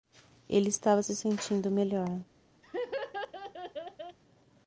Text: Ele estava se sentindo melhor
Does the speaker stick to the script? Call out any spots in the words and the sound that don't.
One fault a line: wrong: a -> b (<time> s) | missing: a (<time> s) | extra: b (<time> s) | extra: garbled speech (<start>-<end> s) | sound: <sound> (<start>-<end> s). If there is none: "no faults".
sound: laugh (2.6-4.2 s)